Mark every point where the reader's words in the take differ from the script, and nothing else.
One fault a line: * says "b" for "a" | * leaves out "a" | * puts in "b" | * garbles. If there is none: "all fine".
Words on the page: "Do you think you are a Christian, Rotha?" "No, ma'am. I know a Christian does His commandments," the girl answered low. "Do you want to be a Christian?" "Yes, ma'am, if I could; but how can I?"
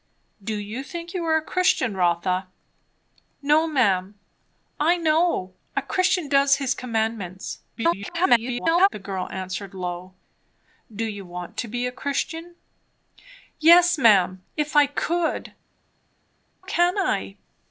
* garbles
* leaves out "but how"